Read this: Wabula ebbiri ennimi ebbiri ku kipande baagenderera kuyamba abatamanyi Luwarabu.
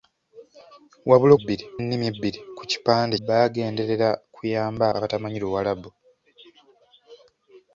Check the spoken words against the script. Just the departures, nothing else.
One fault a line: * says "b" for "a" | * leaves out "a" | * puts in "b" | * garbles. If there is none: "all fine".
all fine